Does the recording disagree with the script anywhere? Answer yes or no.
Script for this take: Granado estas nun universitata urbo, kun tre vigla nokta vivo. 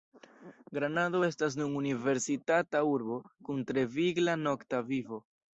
no